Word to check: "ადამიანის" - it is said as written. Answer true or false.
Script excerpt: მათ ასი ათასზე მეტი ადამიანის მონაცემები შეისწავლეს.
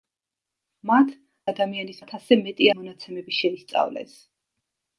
false